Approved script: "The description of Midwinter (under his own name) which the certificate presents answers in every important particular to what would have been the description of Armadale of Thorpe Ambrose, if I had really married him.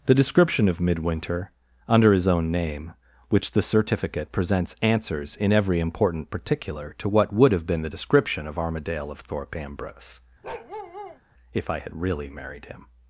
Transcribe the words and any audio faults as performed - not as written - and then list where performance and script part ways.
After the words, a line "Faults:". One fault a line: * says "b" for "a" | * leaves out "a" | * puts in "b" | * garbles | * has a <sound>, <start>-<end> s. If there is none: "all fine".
"The description of Midwinter (under his own name) which the certificate presents answers in every important particular to what would have been the description of Armadale of Thorpe Ambrose, if I had really married him.
Faults:
* has a bark, 10.4-11.2 s